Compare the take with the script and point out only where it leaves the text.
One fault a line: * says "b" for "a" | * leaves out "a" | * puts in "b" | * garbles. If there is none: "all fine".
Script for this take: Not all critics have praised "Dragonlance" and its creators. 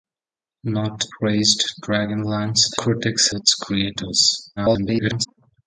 * leaves out "all critics have"
* says "critics" for "and"
* garbles